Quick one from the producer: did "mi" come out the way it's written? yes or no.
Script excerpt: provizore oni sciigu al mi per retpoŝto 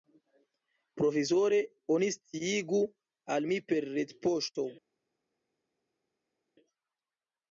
yes